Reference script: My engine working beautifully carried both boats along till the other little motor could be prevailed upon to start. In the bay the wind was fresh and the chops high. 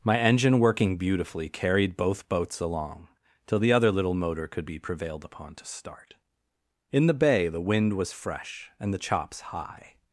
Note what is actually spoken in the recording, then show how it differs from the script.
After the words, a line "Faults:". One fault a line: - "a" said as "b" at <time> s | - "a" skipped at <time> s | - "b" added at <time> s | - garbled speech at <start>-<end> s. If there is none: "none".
My engine working beautifully carried both boats along till the other little motor could be prevailed upon to start. In the bay the wind was fresh and the chops high.
Faults:
none